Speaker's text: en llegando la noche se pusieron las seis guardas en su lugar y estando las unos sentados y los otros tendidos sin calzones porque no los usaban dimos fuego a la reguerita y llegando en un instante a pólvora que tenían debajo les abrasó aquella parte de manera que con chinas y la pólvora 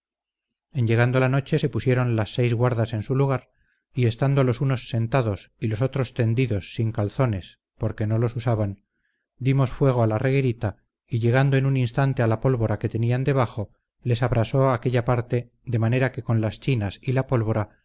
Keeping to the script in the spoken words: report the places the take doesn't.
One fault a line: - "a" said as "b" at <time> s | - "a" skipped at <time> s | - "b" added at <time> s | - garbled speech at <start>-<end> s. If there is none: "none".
- "las" said as "los" at 4.4 s
- "la" added at 12.3 s
- "las" added at 16.4 s